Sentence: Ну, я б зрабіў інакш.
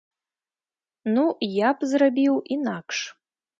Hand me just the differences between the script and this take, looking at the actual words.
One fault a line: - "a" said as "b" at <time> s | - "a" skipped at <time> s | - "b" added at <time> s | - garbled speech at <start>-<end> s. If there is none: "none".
none